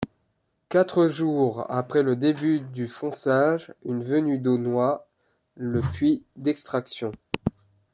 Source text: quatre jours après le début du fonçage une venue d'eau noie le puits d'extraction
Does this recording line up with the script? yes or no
yes